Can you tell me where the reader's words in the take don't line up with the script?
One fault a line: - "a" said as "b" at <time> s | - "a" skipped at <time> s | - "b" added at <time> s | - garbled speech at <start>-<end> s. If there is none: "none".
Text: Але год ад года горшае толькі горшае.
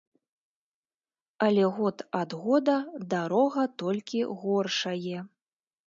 - "горшае" said as "дарога" at 3.1 s